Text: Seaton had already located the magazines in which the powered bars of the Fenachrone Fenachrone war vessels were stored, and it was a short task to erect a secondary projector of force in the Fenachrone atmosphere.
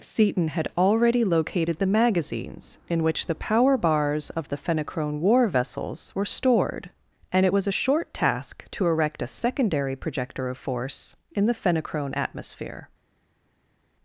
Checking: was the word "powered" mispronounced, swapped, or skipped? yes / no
yes